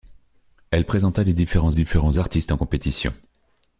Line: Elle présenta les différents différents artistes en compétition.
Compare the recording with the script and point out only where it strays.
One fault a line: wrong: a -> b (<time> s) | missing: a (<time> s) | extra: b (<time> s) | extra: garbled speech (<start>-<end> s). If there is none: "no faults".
no faults